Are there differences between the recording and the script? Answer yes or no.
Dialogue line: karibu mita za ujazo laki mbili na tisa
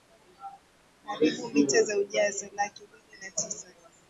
no